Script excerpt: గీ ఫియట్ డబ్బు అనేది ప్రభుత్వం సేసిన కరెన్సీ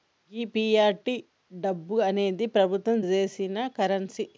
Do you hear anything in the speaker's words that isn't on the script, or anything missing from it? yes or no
no